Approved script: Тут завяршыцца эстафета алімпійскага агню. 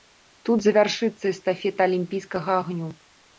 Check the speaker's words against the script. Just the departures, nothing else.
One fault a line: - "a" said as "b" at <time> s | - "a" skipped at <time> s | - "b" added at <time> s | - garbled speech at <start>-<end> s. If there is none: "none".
none